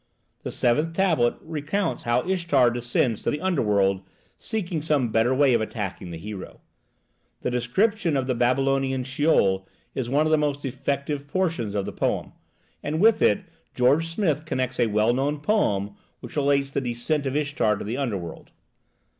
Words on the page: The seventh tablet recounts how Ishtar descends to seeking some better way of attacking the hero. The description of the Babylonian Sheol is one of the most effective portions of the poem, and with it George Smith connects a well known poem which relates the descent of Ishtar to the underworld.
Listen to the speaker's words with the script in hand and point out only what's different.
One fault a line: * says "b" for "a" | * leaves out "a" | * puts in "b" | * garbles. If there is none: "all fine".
* puts in "the underworld"